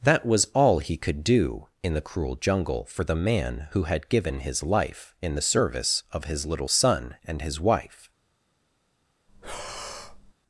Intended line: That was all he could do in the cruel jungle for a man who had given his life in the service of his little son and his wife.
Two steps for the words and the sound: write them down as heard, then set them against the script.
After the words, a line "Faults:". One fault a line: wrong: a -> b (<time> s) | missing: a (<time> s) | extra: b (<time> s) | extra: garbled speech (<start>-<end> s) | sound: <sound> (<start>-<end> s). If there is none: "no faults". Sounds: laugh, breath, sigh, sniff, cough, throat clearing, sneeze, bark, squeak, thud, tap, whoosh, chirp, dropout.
That was all he could do in the cruel jungle for the man who had given his life in the service of his little son and his wife.
Faults:
wrong: a -> the (3.0 s)
sound: breath (9.3-10.3 s)